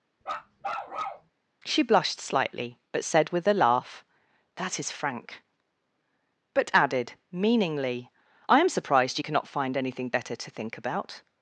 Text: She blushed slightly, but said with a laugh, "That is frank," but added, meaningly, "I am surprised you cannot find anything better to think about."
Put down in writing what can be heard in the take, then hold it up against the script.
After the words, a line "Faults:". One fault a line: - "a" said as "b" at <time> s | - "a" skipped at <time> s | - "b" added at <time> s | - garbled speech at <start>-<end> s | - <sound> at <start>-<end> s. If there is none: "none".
She blushed slightly, but said with a laugh, "That is frank," but added, meaningly, "I am surprised you cannot find anything better to think about."
Faults:
- bark at 0.2-1.3 s